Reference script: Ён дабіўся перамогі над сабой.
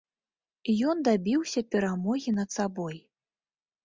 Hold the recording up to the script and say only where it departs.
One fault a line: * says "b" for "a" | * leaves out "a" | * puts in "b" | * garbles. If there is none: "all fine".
all fine